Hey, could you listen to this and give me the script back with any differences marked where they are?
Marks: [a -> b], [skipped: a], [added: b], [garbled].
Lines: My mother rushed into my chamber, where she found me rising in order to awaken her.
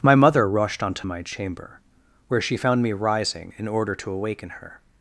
My mother rushed [into -> onto] my chamber, where she found me rising in order to awaken her.